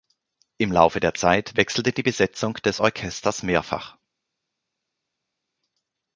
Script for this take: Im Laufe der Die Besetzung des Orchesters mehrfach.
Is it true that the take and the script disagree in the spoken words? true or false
true